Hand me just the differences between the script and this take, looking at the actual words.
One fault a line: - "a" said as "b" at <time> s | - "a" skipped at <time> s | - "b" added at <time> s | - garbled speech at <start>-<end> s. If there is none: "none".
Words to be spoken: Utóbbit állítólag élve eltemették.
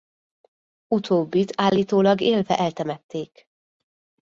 none